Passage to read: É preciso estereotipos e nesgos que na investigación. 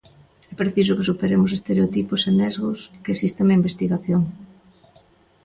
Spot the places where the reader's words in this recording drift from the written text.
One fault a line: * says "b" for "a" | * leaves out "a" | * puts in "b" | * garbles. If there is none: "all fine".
* puts in "que superemos"
* puts in "existen"